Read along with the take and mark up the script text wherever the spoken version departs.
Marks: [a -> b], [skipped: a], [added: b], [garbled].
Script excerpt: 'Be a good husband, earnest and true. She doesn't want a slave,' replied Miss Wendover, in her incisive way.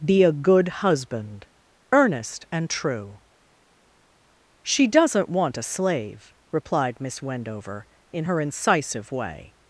'Be a good husband, earnest and true. She doesn't want a slave,' replied Miss Wendover, in her incisive way.